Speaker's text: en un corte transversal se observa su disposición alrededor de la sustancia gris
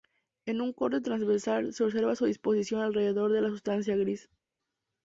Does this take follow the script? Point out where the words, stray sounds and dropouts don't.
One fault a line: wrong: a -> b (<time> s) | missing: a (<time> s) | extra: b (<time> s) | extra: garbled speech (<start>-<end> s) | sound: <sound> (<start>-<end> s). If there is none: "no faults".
no faults